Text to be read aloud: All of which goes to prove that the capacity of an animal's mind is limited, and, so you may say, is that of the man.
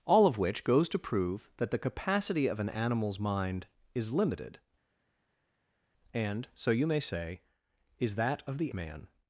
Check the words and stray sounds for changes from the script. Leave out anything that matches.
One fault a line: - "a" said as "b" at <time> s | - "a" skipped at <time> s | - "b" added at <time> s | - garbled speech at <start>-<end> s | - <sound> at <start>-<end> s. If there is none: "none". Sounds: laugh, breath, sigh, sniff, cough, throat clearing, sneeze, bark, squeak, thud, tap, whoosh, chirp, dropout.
none